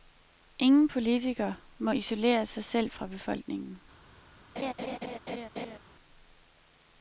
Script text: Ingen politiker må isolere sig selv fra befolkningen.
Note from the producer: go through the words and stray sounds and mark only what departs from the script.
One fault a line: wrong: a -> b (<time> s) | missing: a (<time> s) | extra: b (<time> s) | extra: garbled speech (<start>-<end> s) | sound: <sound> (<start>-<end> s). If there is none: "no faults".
sound: laugh (4.6-5.8 s)